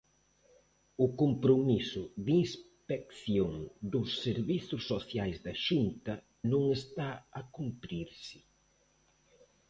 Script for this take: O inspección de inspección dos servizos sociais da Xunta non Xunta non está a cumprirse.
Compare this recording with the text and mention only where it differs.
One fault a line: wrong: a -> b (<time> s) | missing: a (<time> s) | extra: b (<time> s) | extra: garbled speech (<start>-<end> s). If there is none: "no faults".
wrong: inspección -> compromiso (1.2 s)
missing: Xunta non (6.6 s)